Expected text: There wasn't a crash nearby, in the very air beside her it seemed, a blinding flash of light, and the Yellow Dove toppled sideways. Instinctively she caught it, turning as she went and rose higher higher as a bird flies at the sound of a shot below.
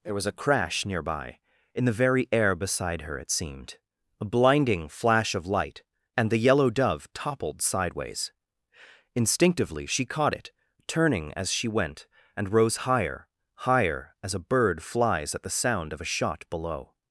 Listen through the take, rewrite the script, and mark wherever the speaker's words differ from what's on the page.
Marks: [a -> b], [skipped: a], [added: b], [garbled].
There [wasn't -> was] a crash nearby, in the very air beside her it seemed, a blinding flash of light, and the Yellow Dove toppled sideways. Instinctively she caught it, turning as she went and rose higher higher as a bird flies at the sound of a shot below.